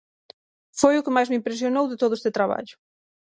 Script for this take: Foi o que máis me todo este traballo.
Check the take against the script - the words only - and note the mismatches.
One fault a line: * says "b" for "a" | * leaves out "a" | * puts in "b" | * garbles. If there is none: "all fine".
* puts in "impresionou de"